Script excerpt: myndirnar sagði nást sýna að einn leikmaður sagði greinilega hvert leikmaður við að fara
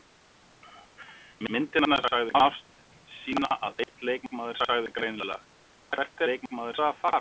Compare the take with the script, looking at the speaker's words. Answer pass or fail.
pass